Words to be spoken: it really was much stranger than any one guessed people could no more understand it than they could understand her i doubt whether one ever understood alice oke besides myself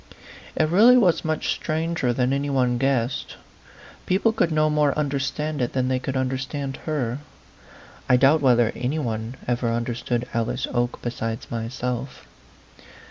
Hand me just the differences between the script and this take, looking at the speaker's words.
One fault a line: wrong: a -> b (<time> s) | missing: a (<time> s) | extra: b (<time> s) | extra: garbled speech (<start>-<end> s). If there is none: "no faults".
extra: any (8.8 s)